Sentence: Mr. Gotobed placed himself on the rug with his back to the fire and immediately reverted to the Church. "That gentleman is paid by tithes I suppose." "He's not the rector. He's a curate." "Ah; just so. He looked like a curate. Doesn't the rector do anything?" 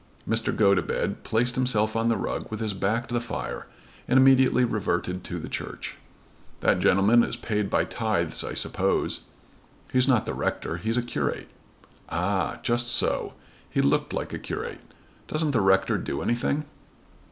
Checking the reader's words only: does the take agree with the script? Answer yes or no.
yes